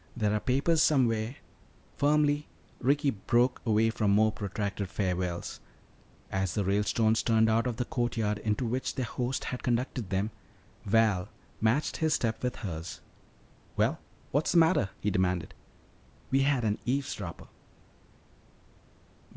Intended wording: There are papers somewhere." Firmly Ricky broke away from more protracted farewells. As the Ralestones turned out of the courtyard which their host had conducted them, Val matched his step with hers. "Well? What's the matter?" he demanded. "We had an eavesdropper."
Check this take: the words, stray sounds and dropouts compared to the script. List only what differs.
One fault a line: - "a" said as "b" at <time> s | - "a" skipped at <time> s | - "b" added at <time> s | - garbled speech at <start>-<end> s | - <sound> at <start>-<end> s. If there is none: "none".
- "into" added at 8.4 s